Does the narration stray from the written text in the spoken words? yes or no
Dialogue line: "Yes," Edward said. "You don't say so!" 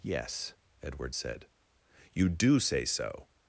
yes